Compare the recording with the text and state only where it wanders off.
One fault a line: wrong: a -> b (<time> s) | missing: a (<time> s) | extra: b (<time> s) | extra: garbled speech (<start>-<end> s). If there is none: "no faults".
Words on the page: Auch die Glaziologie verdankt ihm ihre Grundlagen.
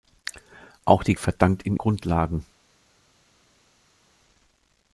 missing: Glaziologie (1.1 s)
missing: ihre (1.8 s)